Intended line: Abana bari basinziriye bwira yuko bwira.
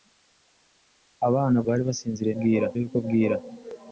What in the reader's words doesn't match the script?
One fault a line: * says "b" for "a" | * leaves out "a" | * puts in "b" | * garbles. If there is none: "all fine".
all fine